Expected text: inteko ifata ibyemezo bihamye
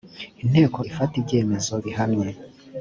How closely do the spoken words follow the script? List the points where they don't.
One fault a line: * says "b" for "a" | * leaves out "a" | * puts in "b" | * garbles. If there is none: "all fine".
all fine